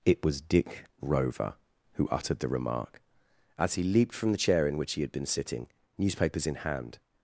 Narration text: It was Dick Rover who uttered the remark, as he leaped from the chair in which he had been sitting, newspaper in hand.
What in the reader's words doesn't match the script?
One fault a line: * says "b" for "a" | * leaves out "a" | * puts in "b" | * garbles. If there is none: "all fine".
* says "newspapers" for "newspaper"